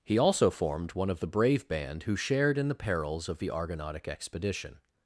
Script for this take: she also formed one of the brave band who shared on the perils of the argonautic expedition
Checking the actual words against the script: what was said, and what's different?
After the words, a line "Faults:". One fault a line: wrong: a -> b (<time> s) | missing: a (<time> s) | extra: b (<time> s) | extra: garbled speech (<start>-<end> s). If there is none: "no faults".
he also formed one of the brave band who shared in the perils of the argonautic expedition
Faults:
wrong: she -> he (0.0 s)
wrong: on -> in (2.6 s)